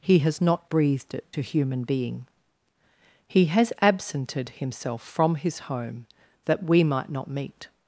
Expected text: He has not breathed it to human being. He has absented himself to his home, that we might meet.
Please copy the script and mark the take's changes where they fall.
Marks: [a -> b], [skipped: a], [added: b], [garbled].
He has not breathed it to human being. He has absented himself [to -> from] his home, that we might [added: not] meet.